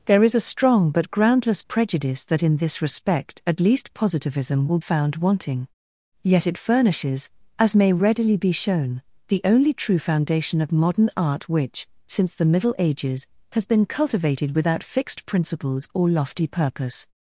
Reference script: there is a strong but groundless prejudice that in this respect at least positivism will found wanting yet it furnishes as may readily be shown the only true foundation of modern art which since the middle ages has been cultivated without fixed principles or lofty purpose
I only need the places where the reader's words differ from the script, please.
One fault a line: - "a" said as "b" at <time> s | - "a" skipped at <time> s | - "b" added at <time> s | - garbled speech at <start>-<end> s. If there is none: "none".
none